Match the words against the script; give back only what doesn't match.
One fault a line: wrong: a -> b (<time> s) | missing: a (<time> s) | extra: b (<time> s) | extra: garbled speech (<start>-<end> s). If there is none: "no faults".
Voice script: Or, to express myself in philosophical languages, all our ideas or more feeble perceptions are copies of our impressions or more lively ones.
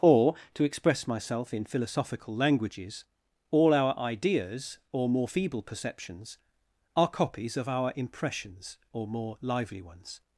no faults